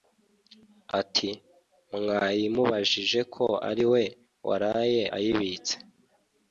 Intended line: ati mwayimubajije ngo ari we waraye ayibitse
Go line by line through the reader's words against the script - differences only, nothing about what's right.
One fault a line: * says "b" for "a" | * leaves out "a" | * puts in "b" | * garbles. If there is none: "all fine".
* says "ko" for "ngo"